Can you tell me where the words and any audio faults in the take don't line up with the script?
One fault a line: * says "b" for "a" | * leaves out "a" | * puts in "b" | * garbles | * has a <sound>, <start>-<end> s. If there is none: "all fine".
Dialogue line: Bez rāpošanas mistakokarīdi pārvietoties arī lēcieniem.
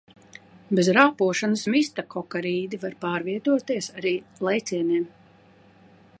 * puts in "var"